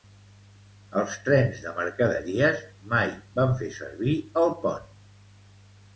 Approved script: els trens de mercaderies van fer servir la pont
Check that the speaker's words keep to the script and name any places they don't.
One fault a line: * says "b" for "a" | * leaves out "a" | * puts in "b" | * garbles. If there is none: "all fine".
* puts in "mai"
* says "el" for "la"